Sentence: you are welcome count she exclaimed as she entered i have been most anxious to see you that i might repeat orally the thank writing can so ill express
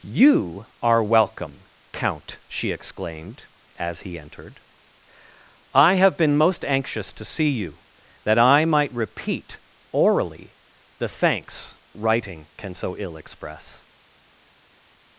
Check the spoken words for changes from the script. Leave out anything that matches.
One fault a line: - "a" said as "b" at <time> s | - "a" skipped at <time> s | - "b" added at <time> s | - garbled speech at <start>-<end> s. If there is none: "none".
- "she" said as "he" at 4.0 s
- "thank" said as "thanks" at 11.1 s